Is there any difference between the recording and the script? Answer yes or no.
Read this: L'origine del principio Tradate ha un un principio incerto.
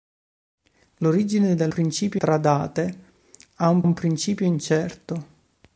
no